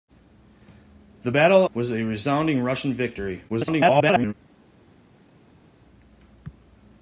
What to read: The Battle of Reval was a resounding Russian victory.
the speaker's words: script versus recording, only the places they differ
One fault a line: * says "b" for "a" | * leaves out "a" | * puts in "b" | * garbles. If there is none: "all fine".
* leaves out "of Reval"
* garbles